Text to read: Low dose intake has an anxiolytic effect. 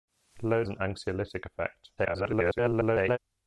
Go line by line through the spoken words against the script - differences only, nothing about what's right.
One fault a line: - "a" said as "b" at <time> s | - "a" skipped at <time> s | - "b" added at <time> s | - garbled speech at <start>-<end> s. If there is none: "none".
- "dose intake has" skipped at 0.6 s
- garbled speech at 2.0-3.2 s